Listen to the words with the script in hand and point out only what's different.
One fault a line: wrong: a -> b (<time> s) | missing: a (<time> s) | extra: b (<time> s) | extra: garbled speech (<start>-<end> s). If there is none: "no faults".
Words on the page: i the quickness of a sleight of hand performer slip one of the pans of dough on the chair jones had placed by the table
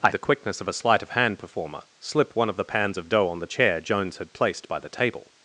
no faults